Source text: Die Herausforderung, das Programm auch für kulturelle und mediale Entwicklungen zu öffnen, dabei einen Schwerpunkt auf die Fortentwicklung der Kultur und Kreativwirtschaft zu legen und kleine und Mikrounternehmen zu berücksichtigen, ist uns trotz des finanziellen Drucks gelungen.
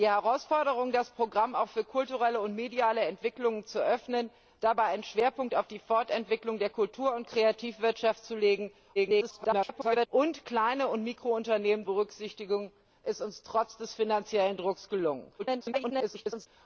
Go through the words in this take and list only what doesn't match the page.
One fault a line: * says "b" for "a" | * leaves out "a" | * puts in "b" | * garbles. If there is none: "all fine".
* garbles
* leaves out "zu"
* garbles